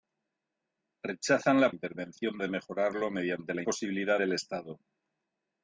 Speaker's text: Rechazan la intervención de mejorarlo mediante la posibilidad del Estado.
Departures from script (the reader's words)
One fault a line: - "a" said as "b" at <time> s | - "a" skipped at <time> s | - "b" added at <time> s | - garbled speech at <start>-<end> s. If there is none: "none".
none